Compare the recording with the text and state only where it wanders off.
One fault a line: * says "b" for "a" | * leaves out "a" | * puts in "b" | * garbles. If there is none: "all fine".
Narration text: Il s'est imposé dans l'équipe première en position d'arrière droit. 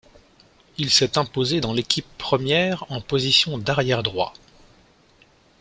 all fine